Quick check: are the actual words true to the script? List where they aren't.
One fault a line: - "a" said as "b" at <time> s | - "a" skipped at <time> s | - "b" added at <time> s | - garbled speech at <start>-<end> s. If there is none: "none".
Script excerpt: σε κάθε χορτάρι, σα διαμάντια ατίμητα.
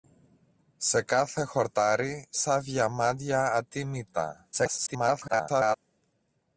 - garbled speech at 4.5-5.8 s